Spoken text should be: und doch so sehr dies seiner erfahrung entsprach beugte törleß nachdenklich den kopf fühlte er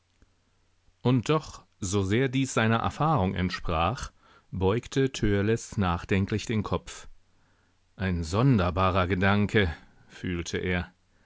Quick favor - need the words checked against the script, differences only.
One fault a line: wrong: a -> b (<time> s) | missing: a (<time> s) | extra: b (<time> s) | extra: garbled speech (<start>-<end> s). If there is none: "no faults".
extra: ein sonderbarer gedanke (8.0 s)